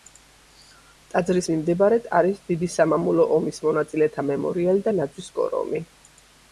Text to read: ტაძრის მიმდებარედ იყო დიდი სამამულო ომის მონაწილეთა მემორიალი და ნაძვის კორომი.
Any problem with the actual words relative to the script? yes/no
yes